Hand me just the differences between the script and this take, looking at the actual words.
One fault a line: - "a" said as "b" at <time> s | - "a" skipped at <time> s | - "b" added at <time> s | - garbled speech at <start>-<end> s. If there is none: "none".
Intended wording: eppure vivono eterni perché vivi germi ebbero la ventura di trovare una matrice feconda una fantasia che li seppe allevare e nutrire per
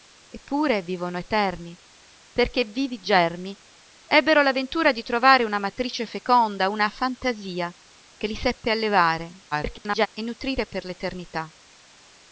- garbled speech at 9.5-10.1 s